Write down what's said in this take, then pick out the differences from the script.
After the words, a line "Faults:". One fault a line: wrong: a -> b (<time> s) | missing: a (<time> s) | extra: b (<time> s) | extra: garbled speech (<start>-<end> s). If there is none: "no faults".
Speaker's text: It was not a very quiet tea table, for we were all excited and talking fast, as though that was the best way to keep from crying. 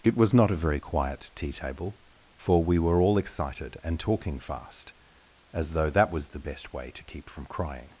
It was not a very quiet tea table, for we were all excited and talking fast, as though that was the best way to keep from crying.
Faults:
no faults